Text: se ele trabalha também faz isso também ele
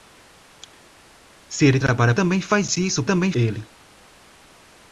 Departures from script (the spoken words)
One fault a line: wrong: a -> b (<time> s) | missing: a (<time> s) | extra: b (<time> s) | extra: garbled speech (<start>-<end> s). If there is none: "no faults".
no faults